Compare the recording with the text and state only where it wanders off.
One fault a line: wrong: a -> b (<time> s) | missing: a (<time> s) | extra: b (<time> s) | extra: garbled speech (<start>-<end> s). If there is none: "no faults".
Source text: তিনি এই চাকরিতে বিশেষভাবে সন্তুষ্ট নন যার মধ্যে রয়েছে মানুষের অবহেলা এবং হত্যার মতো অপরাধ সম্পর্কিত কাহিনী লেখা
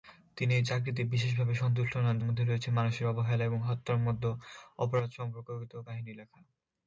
missing: যার (2.1 s)